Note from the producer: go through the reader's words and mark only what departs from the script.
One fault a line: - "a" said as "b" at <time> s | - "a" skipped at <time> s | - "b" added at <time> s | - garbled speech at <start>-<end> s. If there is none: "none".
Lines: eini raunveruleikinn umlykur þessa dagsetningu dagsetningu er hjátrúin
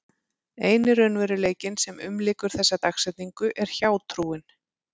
- "sem" added at 1.8 s
- "dagsetningu" skipped at 3.5 s